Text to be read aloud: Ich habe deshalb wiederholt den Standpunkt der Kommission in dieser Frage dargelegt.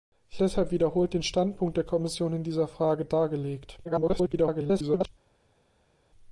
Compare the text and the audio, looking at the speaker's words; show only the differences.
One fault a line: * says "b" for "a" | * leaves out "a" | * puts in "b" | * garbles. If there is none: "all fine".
* leaves out "habe"
* garbles